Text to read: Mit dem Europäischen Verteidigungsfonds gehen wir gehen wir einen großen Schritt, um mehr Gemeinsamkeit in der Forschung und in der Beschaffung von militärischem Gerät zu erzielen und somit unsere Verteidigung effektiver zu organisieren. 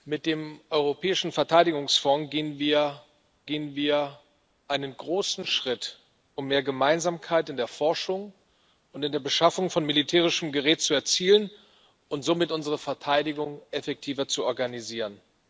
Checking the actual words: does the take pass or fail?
pass